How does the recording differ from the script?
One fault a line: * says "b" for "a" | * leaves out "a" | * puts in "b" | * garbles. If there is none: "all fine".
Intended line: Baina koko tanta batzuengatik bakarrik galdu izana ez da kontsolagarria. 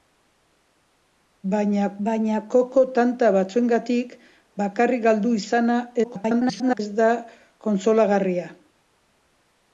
* puts in "baina"
* garbles